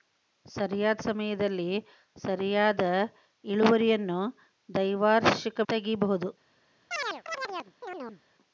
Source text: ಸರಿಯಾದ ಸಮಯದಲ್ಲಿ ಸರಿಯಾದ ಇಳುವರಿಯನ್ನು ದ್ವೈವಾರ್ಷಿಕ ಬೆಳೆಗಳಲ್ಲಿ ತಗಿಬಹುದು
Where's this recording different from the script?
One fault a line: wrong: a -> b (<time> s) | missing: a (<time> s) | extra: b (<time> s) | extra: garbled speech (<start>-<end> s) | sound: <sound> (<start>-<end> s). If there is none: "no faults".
missing: ಬೆಳೆಗಳಲ್ಲಿ (5.6 s)
sound: chirp (6.9-8.2 s)